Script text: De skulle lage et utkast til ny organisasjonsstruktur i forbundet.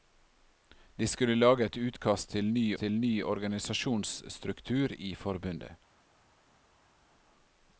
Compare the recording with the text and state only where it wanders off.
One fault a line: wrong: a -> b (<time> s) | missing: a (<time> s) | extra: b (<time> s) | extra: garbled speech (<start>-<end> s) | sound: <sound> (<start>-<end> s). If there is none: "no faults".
extra: til ny (2.8 s)